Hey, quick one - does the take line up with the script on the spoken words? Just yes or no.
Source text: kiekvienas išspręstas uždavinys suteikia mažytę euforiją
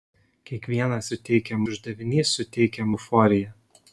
no